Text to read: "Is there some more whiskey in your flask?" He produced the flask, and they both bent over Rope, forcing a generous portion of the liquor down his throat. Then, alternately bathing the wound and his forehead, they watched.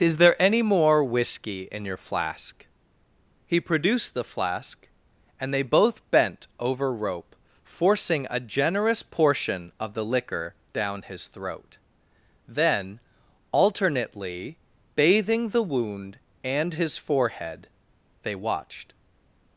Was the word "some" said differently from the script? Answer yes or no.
yes